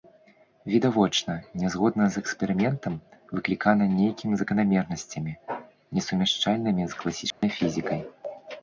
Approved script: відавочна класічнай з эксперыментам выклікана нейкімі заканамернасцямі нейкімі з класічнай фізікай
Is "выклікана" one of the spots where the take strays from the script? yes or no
no